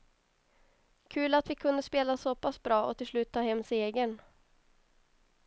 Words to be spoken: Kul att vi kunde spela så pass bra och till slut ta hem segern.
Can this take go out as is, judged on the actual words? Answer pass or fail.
pass